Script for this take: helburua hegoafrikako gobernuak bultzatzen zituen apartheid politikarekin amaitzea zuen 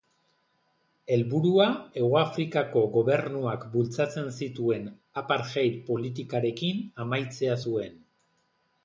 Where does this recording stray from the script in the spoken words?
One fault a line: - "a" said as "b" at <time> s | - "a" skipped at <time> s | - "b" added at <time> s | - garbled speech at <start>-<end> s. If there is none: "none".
none